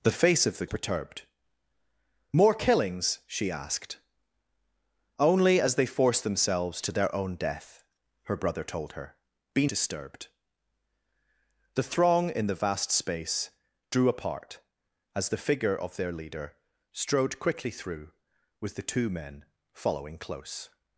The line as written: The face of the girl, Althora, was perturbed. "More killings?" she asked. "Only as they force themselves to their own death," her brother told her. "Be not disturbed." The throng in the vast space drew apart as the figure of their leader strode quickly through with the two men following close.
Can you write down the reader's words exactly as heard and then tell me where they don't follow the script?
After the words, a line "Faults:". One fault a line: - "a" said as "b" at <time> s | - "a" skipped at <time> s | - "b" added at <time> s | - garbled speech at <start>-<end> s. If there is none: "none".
The face of the perturbed. "More killings?" she asked. "Only as they force themselves to their own death," her brother told her. "Be disturbed." The throng in the vast space drew apart as the figure of their leader strode quickly through with the two men following close.
Faults:
- "girl Althora was" skipped at 0.7 s
- "not" skipped at 9.7 s